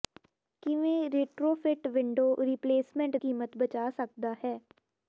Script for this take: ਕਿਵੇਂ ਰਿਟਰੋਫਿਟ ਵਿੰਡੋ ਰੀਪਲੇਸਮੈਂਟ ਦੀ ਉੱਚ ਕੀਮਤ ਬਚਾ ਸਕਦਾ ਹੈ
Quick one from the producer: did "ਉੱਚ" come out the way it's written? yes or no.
no